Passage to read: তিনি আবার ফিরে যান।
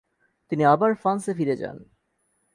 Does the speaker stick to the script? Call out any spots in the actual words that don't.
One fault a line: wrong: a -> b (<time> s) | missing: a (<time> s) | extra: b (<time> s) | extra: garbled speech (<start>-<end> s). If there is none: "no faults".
extra: ফ্রান্সে (0.9 s)